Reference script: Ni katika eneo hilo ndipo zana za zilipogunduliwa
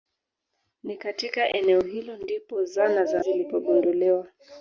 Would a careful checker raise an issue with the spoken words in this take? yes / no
no